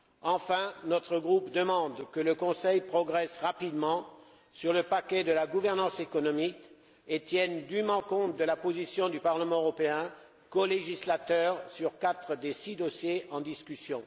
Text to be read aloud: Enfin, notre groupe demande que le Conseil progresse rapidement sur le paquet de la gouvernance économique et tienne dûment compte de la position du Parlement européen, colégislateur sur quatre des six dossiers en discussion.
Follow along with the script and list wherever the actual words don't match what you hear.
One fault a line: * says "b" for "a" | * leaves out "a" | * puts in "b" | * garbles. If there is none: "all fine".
all fine